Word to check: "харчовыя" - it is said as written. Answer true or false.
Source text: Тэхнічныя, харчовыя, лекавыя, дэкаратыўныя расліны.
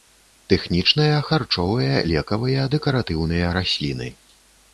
true